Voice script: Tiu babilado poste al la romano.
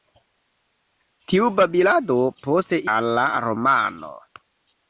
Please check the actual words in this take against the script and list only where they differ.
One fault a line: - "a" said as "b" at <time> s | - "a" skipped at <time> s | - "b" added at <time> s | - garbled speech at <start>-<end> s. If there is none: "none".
none